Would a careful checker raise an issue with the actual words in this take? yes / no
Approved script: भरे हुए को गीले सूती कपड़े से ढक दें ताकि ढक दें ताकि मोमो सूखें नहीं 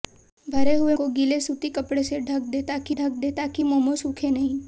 no